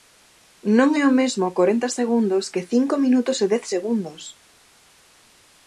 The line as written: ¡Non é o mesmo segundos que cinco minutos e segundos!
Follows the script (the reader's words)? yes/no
no